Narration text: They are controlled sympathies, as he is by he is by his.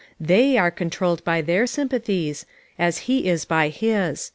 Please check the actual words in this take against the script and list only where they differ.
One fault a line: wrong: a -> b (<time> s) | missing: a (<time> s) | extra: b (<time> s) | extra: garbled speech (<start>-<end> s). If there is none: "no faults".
extra: by their (1.2 s)
missing: he is by (3.7 s)